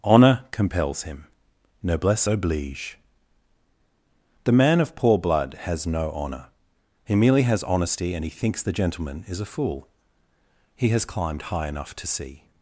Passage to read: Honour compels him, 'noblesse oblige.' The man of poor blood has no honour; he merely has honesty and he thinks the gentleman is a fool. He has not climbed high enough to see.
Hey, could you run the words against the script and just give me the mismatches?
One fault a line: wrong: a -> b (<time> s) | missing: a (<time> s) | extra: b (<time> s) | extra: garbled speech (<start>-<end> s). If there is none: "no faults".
missing: not (11.1 s)